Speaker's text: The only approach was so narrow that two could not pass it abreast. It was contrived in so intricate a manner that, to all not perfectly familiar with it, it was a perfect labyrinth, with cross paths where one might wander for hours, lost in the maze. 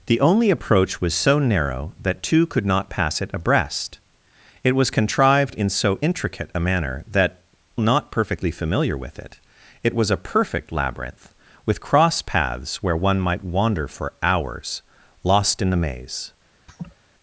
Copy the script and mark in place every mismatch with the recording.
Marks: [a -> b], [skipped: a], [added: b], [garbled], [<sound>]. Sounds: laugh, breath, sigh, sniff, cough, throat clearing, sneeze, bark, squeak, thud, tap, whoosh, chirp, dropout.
The only approach was so narrow that two could not pass it abreast. It was contrived in so intricate a manner that, [skipped: to all] not perfectly familiar with it, it was a perfect labyrinth, with cross paths where one might wander for hours, lost in the maze. [laugh]